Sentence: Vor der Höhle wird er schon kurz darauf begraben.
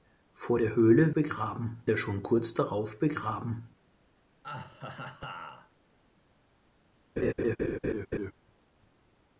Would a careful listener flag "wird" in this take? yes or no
yes